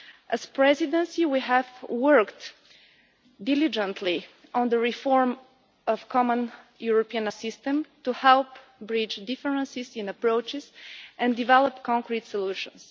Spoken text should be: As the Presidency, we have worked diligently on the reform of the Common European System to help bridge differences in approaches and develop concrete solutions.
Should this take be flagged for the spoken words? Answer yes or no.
no